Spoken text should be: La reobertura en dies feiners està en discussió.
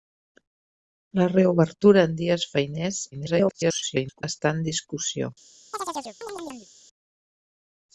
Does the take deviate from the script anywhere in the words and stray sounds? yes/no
yes